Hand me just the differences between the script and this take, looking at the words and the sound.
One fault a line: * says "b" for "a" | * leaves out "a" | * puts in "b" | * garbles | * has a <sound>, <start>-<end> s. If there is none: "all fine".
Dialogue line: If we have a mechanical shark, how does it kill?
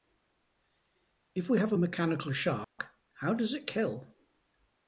* has a dropout, 2.6-2.8 s